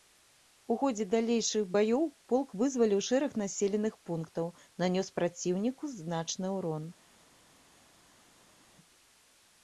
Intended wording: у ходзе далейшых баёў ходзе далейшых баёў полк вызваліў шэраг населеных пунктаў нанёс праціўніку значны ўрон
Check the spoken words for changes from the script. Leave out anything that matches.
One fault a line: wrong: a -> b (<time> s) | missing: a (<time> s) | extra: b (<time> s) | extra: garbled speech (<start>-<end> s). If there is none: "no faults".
missing: ходзе далейшых баёў (2.0 s)